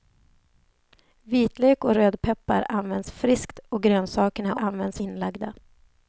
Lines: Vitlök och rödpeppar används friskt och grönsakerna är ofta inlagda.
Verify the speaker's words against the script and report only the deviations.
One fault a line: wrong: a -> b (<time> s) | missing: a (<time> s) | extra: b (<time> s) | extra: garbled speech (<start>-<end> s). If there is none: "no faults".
wrong: ofta -> används (4.6 s)